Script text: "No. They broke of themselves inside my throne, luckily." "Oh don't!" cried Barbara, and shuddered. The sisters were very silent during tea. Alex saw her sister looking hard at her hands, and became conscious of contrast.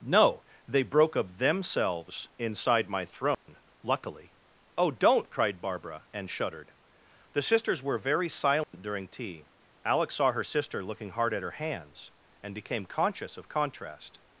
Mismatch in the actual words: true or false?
false